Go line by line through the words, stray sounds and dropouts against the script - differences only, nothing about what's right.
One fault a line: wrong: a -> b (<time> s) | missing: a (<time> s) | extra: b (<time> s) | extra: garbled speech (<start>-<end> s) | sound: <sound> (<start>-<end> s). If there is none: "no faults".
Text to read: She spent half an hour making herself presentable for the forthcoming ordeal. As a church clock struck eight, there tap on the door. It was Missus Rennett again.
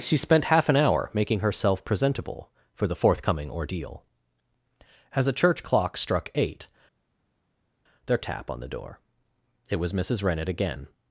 no faults